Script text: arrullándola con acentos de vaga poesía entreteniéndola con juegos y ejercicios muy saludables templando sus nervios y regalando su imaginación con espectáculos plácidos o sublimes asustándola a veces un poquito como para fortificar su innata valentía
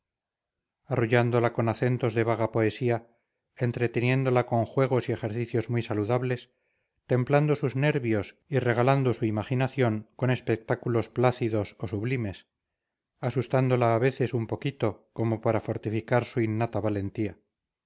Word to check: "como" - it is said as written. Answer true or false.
true